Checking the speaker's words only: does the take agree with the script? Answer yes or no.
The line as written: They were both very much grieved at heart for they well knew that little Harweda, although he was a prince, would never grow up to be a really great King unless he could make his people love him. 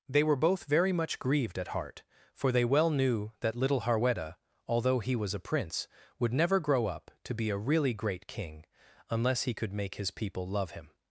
yes